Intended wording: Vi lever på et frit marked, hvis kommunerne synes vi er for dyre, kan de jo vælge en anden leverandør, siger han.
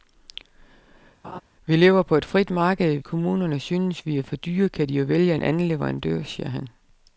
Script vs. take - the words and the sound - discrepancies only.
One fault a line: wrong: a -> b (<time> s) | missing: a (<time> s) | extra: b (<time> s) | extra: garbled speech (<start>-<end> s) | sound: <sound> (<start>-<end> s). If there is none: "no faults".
sound: laugh (1.2-1.4 s)
missing: hvis (3.0 s)